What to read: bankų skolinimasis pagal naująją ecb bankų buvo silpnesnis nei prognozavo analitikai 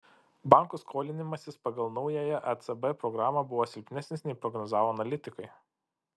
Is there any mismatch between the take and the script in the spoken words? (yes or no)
yes